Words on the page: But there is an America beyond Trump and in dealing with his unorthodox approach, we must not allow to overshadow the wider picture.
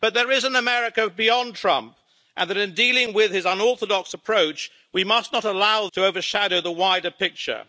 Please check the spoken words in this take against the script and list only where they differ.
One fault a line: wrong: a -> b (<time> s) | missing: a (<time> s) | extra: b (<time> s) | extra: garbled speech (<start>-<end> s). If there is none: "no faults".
no faults